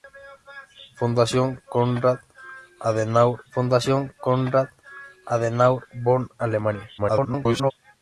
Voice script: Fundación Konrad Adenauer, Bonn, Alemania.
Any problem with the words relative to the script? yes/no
yes